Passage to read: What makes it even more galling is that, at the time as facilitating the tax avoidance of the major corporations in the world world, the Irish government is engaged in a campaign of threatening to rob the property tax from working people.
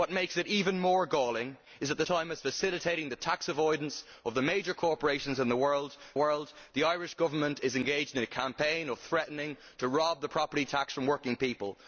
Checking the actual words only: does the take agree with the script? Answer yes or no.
yes